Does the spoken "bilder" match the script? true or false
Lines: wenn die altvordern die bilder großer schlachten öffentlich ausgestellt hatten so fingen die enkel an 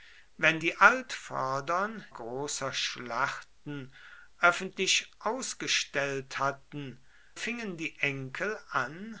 false